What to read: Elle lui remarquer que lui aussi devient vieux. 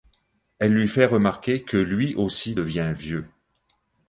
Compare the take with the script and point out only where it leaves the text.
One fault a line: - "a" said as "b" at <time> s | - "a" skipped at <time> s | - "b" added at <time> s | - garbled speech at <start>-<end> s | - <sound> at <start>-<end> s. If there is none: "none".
- "fait" added at 0.9 s